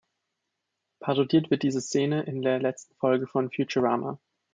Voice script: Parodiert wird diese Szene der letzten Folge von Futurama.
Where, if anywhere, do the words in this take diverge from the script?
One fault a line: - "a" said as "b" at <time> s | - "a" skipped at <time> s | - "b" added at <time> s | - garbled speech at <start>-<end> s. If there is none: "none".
- "in" added at 2.2 s